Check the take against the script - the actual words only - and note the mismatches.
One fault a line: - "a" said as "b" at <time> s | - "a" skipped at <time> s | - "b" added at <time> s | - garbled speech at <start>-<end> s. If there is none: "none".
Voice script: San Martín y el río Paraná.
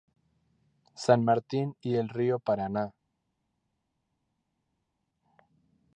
none